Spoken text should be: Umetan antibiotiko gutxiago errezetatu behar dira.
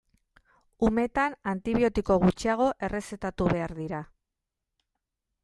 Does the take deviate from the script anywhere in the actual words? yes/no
no